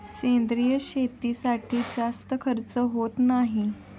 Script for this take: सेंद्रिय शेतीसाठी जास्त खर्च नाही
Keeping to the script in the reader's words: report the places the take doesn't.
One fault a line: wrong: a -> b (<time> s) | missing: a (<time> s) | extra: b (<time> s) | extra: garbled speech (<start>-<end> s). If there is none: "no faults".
extra: होत (2.9 s)